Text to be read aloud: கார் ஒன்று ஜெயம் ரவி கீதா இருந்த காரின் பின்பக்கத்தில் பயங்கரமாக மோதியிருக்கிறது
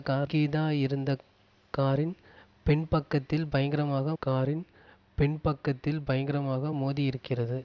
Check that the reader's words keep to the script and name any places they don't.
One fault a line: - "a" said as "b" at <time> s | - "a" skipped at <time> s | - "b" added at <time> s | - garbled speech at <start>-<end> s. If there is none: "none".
- "ஒன்று ஜெயம் ரவி கீதா இருந்த" said as "கீதா இருந்த காரின் பின்பக்கத்தில் பயங்கரமாக" at 0.2 s